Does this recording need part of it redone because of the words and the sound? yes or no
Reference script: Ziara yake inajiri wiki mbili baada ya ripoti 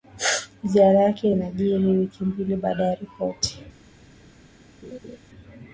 yes